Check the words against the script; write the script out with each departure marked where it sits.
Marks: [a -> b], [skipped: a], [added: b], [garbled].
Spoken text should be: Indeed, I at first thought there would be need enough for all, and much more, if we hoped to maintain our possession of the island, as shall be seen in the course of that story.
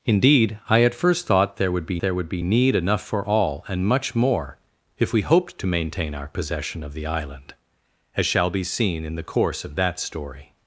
Indeed, I at first thought there would be [added: there would be] need enough for all, and much more, if we hoped to maintain our possession of the island, as shall be seen in the course of that story.